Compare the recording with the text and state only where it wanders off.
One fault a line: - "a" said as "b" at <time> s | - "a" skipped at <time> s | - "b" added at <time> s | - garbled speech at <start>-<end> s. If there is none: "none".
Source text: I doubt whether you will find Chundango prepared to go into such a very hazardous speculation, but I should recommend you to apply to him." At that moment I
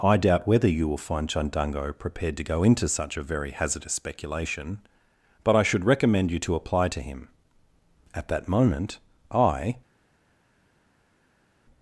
none